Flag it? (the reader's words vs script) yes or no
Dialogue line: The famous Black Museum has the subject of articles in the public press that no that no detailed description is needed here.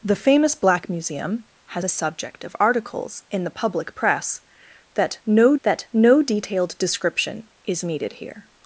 no